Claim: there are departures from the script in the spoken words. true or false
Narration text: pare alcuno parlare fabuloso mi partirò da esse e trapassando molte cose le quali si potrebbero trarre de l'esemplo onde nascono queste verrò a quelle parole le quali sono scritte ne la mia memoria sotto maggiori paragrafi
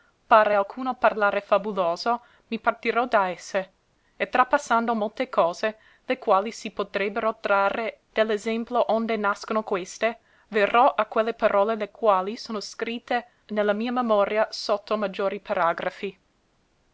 false